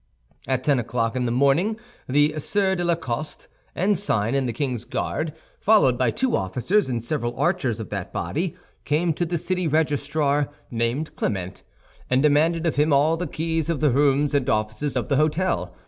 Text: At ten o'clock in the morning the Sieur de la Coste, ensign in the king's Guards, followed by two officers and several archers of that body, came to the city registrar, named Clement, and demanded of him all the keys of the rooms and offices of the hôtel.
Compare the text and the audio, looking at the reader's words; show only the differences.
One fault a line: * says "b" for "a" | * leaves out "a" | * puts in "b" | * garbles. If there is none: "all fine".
all fine